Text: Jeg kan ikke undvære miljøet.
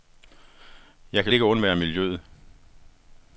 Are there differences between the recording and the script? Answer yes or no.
no